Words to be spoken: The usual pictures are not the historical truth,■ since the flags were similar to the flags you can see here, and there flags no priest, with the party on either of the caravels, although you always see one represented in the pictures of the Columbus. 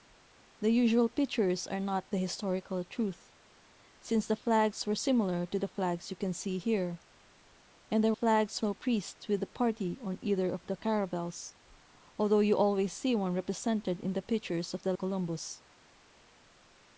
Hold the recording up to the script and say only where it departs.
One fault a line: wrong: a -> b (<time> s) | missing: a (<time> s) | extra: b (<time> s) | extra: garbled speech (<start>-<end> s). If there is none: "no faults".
no faults